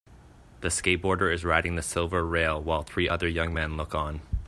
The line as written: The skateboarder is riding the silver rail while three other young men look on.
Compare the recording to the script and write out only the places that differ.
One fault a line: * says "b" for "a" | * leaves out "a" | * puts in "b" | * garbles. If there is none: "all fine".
all fine